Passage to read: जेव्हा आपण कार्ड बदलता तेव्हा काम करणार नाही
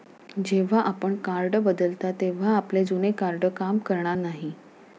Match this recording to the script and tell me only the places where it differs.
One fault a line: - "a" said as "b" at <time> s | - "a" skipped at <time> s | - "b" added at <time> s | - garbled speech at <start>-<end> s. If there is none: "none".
- "आपले जुने कार्ड" added at 2.5 s